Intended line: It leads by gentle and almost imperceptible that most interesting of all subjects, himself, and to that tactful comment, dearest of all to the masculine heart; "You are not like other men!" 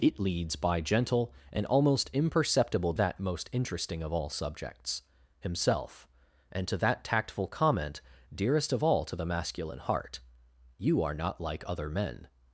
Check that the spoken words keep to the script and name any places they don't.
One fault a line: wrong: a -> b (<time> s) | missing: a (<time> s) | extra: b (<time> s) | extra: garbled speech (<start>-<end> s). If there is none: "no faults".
no faults